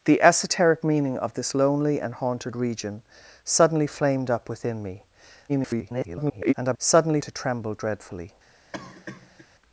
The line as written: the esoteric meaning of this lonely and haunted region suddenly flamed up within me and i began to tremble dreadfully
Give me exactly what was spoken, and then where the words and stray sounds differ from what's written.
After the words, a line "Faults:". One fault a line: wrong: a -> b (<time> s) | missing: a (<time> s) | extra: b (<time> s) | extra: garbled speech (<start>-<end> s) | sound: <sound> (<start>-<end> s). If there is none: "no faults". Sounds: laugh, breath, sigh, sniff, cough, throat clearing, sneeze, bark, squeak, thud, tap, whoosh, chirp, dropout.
the esoteric meaning of this lonely and haunted region suddenly flamed up within me [garbled] and i suddenly to tremble dreadfully
Faults:
extra: garbled speech (5.5-6.5 s)
wrong: began -> suddenly (6.8 s)
sound: cough (8.7-9.5 s)